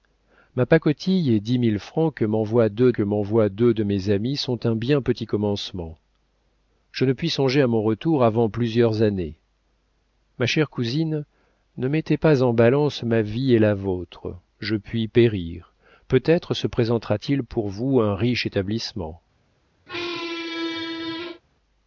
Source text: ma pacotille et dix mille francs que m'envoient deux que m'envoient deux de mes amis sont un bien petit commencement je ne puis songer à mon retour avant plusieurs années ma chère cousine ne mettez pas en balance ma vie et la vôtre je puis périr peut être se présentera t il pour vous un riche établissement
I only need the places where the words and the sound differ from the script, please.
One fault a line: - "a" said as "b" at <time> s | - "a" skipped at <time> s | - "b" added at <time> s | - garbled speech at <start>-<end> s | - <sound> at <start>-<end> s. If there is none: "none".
- squeak at 19.9-21.4 s